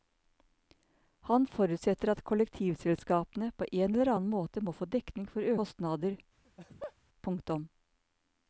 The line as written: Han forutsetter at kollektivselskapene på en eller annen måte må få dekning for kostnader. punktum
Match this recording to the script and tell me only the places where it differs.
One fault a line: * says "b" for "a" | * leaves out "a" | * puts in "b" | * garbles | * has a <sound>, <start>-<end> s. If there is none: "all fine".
* has a laugh, 6.4-6.9 s